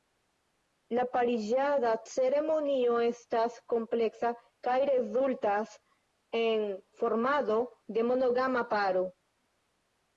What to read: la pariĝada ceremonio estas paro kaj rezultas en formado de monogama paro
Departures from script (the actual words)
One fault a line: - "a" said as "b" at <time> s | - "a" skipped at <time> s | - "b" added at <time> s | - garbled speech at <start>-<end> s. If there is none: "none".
- "paro" said as "kompleksa" at 3.7 s